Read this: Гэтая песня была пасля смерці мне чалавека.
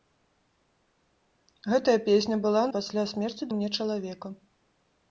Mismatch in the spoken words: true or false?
false